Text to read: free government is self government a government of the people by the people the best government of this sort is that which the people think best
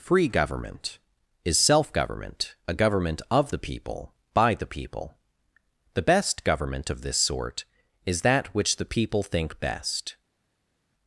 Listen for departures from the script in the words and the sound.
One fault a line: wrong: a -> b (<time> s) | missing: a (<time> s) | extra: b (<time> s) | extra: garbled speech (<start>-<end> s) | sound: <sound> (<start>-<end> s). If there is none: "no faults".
no faults